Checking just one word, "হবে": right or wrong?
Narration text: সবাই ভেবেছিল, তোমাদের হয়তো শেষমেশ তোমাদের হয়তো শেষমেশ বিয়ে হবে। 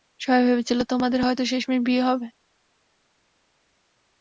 right